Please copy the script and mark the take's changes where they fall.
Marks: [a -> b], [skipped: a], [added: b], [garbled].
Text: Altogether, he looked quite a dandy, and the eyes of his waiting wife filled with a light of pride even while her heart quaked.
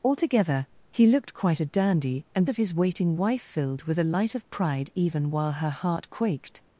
Altogether, he looked quite a dandy, and [skipped: the eyes] of his waiting wife filled with a light of pride even while her heart quaked.